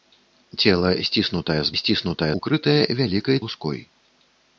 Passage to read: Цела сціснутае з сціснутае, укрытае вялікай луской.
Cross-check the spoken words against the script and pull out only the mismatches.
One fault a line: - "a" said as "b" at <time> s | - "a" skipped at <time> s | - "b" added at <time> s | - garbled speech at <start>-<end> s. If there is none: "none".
none